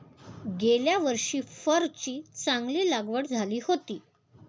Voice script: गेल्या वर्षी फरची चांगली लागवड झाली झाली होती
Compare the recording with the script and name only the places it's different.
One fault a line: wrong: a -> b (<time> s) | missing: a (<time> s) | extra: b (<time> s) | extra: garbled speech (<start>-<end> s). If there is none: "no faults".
missing: झाली (3.6 s)